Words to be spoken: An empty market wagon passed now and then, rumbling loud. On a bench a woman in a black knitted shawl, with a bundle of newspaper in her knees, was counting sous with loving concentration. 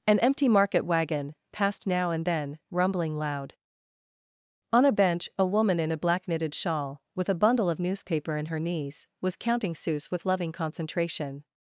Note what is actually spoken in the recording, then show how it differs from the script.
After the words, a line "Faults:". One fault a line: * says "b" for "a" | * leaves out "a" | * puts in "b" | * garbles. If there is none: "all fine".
An empty market wagon passed now and then, rumbling loud. On a bench a woman in a black knitted shawl, with a bundle of newspaper in her knees, was counting sous with loving concentration.
Faults:
all fine